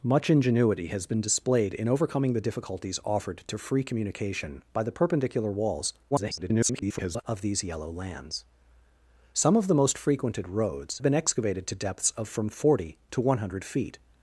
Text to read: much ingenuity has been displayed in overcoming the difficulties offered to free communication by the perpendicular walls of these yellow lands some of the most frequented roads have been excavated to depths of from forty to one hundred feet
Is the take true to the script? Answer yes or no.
no